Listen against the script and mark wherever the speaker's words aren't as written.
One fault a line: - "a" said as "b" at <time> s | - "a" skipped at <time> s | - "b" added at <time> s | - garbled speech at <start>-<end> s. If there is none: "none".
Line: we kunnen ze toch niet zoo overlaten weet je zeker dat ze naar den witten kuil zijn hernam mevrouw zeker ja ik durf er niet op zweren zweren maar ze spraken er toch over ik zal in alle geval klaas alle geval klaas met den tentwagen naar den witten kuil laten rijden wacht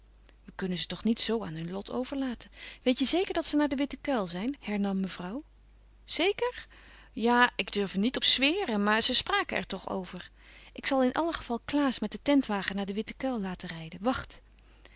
- "aan hun lot" added at 1.4 s
- "zweren" skipped at 8.8 s
- "alle geval klaas" skipped at 12.0 s